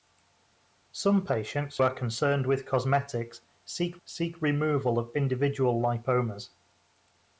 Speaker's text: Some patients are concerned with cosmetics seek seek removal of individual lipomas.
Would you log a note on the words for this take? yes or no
no